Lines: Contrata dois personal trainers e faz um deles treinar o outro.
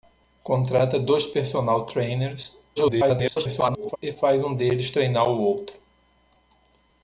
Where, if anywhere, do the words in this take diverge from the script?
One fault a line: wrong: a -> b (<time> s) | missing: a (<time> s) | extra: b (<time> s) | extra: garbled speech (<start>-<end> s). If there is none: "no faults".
extra: garbled speech (2.8-4.0 s)